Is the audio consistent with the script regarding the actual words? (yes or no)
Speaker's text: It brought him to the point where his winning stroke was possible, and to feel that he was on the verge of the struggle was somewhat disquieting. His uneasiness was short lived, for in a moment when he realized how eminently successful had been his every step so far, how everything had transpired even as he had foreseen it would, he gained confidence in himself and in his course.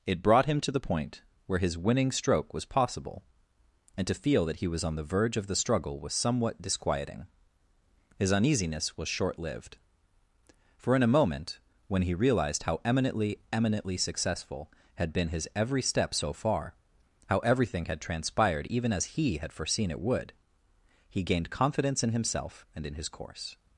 no